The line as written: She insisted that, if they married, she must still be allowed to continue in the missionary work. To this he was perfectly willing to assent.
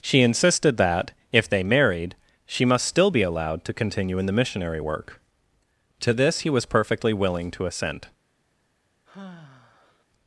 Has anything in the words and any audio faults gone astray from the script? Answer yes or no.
yes